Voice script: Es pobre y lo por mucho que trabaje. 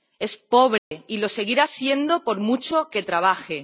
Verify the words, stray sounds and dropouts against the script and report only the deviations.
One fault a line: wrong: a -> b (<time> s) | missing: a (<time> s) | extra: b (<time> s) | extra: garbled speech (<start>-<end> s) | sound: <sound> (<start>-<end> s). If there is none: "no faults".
sound: dropout (0.8-0.9 s)
extra: seguirá siendo (1.3 s)